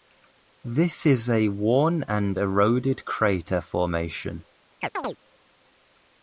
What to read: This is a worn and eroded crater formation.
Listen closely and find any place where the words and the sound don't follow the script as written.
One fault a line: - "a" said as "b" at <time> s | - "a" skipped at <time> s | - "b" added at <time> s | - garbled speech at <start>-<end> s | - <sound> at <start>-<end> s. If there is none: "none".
- chirp at 4.8-5.2 s